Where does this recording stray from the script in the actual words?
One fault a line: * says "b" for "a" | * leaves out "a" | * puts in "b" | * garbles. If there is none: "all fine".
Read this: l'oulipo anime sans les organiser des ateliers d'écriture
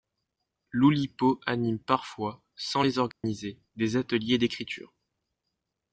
* puts in "parfois"